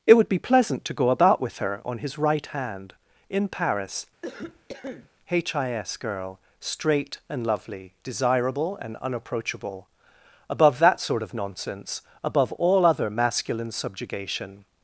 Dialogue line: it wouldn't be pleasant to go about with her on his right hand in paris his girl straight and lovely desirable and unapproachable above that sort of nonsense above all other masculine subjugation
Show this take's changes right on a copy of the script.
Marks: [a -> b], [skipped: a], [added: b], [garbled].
it [wouldn't -> would] be pleasant to go about with her on his right hand in paris his girl straight and lovely desirable and unapproachable above that sort of nonsense above all other masculine subjugation